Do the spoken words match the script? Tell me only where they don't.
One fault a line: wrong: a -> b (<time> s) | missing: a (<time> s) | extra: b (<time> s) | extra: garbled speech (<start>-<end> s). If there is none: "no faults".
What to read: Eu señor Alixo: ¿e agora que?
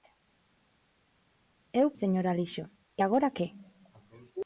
no faults